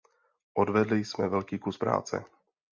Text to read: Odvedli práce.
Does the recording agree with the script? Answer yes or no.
no